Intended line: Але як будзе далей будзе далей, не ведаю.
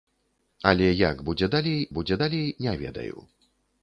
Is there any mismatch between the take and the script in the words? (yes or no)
no